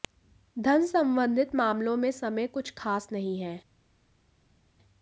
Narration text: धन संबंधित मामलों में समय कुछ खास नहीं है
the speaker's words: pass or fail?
pass